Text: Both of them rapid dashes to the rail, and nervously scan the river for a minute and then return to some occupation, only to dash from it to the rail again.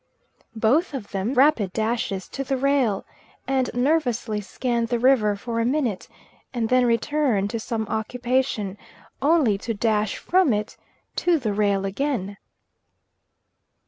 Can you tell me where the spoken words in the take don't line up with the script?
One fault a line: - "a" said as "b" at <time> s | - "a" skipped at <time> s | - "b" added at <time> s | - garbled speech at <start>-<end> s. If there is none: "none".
none